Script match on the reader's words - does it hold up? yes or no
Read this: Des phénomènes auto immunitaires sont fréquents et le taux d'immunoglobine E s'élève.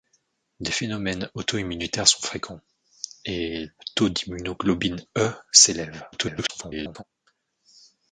no